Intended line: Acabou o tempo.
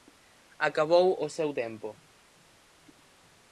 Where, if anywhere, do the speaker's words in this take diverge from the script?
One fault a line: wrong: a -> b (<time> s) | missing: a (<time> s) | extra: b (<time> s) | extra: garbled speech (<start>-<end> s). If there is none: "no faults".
extra: seu (1.3 s)